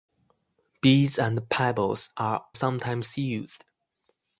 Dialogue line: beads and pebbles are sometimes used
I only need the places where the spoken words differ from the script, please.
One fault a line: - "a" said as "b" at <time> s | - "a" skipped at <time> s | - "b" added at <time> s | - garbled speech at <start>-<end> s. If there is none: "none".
none